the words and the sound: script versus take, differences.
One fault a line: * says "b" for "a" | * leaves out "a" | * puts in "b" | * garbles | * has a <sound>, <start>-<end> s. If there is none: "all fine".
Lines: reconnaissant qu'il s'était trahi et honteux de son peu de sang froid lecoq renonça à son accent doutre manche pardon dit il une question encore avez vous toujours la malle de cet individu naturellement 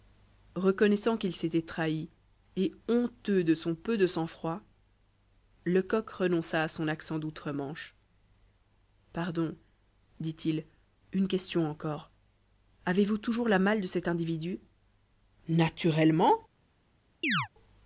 * has a chirp, 17.2-17.5 s